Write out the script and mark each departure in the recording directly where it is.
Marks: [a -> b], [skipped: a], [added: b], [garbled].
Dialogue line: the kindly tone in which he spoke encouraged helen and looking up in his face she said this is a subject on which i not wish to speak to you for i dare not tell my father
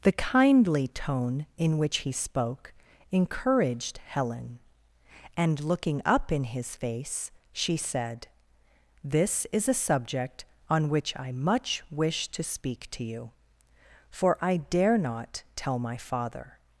the kindly tone in which he spoke encouraged helen and looking up in his face she said this is a subject on which i [not -> much] wish to speak to you for i dare not tell my father